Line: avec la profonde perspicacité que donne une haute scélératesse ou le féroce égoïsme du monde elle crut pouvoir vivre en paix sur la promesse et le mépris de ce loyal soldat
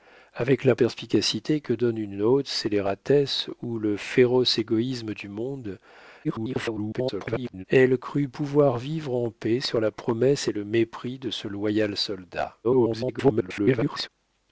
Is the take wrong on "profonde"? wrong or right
wrong